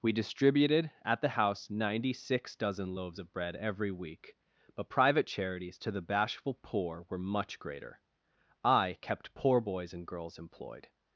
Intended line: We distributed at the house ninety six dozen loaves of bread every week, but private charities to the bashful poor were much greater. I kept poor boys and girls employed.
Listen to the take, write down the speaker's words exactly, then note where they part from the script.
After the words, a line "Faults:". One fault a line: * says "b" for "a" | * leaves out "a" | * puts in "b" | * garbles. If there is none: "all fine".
We distributed at the house ninety six dozen loaves of bread every week, but private charities to the bashful poor were much greater. I kept poor boys and girls employed.
Faults:
all fine